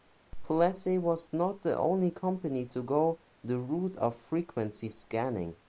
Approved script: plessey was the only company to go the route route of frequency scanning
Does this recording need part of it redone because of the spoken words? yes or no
yes